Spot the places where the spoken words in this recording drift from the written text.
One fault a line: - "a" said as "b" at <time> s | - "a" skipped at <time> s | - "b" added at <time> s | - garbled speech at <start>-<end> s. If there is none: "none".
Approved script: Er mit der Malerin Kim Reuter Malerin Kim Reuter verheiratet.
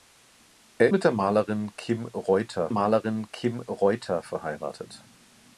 none